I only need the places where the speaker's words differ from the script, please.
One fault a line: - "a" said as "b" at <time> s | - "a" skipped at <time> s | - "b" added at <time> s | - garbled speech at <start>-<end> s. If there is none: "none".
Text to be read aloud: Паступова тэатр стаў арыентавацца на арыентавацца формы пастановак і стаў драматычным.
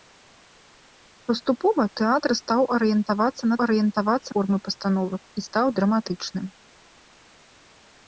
none